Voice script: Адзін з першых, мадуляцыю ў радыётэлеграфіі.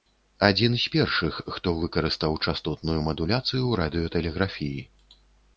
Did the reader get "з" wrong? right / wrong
right